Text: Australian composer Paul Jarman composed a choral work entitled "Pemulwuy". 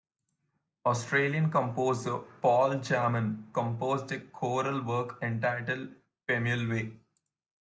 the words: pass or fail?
pass